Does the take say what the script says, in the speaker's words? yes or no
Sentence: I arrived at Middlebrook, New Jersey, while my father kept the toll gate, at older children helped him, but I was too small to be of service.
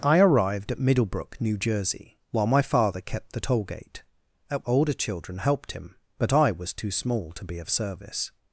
yes